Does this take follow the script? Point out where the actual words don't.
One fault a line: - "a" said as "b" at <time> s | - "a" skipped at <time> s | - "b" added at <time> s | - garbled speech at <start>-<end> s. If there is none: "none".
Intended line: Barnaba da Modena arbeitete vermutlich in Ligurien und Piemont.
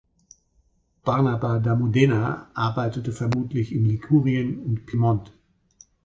none